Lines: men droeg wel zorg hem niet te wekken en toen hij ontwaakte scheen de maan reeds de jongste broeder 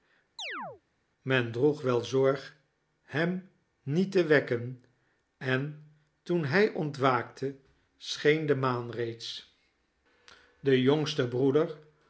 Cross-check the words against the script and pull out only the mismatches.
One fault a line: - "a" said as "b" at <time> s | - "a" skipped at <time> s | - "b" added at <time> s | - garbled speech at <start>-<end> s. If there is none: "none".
none